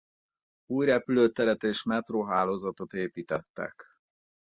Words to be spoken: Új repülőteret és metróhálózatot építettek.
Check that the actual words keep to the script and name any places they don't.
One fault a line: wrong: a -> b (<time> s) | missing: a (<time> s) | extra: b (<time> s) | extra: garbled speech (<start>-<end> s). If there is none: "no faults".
no faults